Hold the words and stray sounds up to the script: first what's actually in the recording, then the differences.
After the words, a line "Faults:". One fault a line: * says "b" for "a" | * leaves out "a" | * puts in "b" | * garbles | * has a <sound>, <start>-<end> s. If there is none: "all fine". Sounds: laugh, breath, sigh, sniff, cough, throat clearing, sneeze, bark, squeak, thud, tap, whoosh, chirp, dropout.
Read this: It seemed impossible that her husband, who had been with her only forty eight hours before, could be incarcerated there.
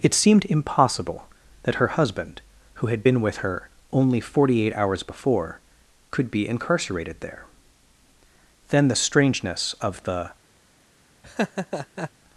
It seemed impossible that her husband, who had been with her only forty eight hours before, could be incarcerated there. Then the strangeness of the
Faults:
* puts in "Then the strangeness of the"
* has a laugh, 11.2-12.1 s